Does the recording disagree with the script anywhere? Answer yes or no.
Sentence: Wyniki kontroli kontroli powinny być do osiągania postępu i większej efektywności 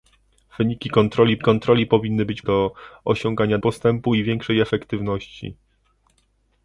no